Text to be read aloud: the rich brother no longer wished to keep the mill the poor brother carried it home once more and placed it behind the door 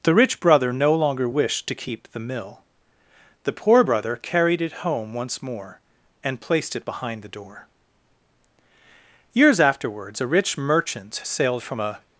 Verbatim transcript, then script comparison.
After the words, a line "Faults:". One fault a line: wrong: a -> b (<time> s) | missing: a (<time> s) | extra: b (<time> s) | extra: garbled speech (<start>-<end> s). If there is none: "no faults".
the rich brother no longer wished to keep the mill the poor brother carried it home once more and placed it behind the door years afterwards a rich merchant sailed from a
Faults:
extra: years afterwards a rich merchant sailed from a (9.3 s)